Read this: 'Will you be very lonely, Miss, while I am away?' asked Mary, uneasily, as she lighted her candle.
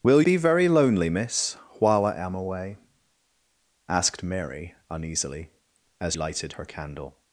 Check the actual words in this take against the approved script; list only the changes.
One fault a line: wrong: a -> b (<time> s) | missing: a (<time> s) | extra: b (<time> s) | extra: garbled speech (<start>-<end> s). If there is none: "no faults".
missing: you (0.2 s)
missing: she (6.2 s)